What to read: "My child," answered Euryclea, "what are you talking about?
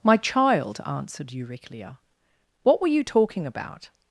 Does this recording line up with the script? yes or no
no